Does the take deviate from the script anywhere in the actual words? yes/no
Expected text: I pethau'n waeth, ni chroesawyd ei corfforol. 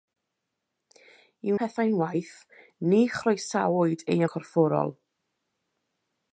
no